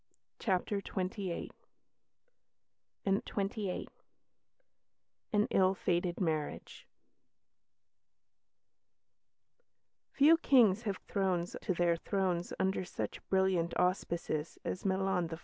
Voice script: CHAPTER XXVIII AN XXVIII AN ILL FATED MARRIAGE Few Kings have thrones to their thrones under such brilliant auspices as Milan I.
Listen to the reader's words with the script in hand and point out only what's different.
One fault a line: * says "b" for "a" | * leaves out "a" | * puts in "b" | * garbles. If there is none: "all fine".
all fine